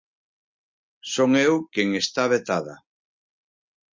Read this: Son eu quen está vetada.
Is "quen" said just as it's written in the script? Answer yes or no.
yes